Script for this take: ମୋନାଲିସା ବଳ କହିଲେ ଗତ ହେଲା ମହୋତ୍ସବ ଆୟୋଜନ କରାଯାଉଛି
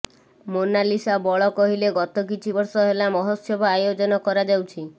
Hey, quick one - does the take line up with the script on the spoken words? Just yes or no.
no